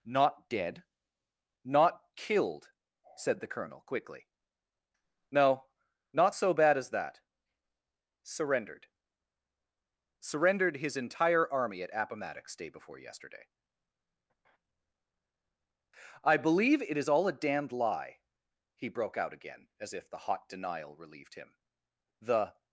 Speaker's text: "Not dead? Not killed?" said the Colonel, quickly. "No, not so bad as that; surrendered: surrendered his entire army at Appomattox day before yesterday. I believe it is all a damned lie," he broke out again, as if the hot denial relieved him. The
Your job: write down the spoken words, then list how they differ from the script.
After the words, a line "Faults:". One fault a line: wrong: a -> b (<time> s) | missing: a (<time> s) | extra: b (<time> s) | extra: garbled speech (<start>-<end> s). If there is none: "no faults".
"Not dead? Not killed?" said the Colonel, quickly. "No, not so bad as that; surrendered: surrendered his entire army at Appomattox day before yesterday. I believe it is all a damned lie," he broke out again, as if the hot denial relieved him. The
Faults:
no faults